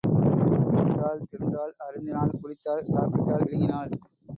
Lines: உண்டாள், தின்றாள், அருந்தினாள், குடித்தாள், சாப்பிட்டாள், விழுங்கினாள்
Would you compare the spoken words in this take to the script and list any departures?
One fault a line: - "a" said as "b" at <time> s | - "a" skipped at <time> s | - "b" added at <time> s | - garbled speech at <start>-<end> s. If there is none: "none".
none